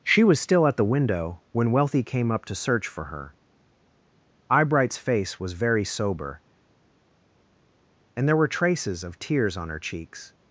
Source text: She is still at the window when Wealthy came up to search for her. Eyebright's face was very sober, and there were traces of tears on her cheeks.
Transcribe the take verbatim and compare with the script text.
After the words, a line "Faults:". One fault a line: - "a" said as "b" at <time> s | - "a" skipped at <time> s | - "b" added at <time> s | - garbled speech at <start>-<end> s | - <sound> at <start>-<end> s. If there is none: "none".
She was still at the window when Wealthy came up to search for her. Eyebright's face was very sober, and there were traces of tears on her cheeks.
Faults:
- "is" said as "was" at 0.2 s